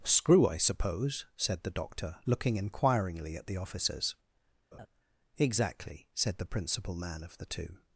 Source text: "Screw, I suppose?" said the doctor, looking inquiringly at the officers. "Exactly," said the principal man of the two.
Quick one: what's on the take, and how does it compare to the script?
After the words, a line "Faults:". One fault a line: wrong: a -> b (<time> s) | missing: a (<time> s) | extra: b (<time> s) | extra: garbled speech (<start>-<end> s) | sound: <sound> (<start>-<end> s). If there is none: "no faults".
"Screw, I suppose?" said the doctor, looking inquiringly at the officers. "Exactly," said the principal man of the two.
Faults:
sound: laugh (4.7-4.9 s)